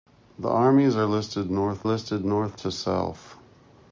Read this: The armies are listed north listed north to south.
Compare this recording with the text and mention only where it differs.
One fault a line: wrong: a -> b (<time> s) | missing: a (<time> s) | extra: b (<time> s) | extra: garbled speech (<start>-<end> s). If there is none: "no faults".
no faults